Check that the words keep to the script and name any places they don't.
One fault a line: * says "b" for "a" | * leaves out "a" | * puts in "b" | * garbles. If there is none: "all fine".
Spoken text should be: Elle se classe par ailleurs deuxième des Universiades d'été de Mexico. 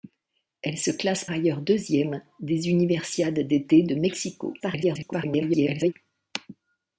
* leaves out "par"
* garbles